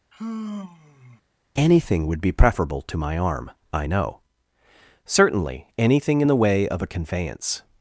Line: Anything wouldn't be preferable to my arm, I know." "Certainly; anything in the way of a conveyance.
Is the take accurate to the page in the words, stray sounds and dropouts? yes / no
no